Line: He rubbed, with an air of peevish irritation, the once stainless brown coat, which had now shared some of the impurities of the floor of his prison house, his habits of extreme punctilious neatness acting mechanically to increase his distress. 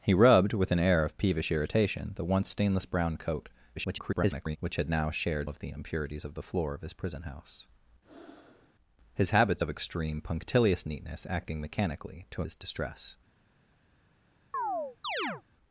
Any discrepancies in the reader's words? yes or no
yes